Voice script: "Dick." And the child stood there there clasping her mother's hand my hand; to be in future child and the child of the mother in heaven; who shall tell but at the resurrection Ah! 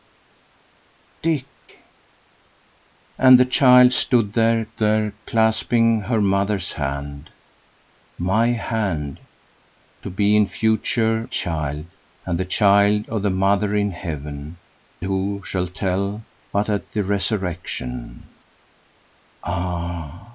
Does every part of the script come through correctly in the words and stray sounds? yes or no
yes